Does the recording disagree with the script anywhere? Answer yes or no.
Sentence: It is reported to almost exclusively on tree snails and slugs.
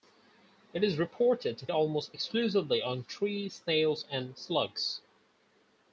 no